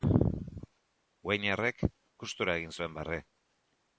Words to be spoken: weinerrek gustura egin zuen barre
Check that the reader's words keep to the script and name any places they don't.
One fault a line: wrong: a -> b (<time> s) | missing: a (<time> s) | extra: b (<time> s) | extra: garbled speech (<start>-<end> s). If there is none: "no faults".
no faults